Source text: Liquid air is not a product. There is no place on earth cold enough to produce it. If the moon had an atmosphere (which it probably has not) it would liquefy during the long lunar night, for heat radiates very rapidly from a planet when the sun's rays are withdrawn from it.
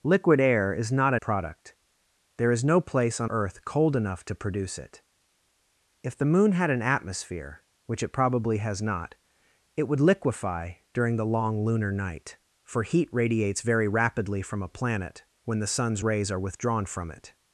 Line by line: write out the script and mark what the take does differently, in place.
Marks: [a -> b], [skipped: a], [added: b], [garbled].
Liquid air is not a product. There is no place on earth cold enough to produce it. If the moon had an atmosphere (which it probably has not) it would liquefy during the long lunar night, for heat radiates very rapidly from a planet when the sun's rays are withdrawn from it.